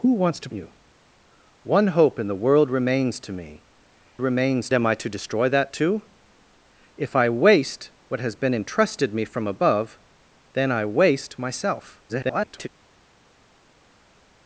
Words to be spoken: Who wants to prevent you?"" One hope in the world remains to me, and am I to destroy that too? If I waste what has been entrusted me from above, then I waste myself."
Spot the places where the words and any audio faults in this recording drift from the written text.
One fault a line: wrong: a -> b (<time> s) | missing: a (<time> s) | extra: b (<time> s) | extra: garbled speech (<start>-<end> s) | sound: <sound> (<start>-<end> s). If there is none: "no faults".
missing: prevent (0.5 s)
wrong: and -> remains (4.2 s)
extra: garbled speech (12.1-12.7 s)